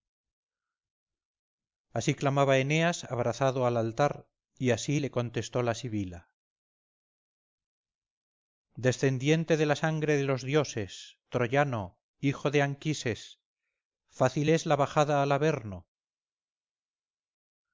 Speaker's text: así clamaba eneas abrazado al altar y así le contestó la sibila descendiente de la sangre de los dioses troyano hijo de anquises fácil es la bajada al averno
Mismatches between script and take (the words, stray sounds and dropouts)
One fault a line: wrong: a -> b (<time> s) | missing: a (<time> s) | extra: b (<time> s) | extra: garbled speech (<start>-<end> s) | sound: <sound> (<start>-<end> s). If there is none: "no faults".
no faults